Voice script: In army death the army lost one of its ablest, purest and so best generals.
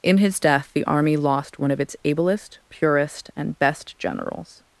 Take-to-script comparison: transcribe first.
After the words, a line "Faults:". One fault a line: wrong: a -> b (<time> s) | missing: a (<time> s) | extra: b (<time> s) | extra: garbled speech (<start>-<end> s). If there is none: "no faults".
In his death the army lost one of its ablest, purest and best generals.
Faults:
wrong: army -> his (0.2 s)
missing: so (3.6 s)